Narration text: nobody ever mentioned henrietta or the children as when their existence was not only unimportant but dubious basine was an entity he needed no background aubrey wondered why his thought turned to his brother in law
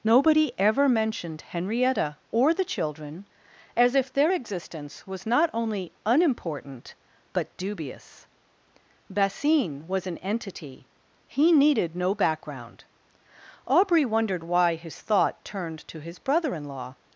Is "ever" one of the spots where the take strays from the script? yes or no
no